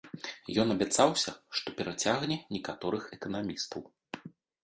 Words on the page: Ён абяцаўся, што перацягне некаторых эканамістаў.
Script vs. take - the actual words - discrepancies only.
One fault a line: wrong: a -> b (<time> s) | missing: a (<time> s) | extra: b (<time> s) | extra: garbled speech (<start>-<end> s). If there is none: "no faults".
no faults